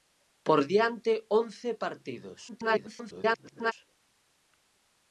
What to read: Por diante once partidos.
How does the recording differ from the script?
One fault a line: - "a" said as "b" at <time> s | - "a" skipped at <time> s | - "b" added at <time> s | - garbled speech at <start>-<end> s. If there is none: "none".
- garbled speech at 2.5-3.7 s